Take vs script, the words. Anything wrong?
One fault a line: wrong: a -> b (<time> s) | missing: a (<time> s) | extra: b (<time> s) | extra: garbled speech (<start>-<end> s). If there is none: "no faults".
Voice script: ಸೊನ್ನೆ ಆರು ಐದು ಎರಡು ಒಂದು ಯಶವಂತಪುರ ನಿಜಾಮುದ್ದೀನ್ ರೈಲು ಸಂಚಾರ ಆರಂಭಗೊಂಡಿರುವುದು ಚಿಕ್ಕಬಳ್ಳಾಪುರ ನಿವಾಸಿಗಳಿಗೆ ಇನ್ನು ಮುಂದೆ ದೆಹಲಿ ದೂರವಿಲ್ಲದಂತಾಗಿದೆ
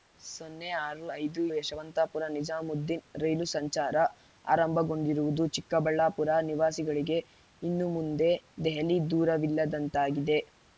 missing: ಎರಡು ಒಂದು (1.4 s)